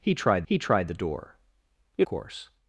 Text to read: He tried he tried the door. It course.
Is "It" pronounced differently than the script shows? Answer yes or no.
no